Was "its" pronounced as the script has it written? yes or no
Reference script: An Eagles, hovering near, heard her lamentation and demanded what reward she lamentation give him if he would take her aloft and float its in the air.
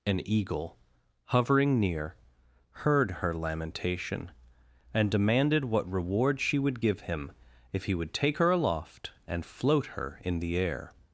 no